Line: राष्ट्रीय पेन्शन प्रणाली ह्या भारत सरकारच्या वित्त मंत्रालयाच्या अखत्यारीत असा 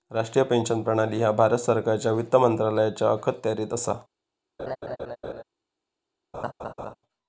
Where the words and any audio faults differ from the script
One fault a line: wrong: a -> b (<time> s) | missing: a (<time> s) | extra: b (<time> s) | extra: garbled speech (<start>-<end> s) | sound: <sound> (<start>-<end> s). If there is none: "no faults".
sound: laugh (4.6-5.4 s)
sound: laugh (6.3-7.0 s)